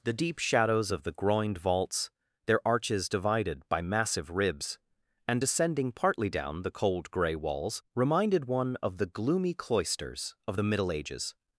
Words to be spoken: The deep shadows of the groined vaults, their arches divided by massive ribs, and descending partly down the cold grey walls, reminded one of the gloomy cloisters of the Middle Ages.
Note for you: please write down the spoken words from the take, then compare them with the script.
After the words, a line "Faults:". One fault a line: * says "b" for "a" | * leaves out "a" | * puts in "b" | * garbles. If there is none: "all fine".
The deep shadows of the groined vaults, their arches divided by massive ribs, and descending partly down the cold grey walls, reminded one of the gloomy cloisters of the Middle Ages.
Faults:
all fine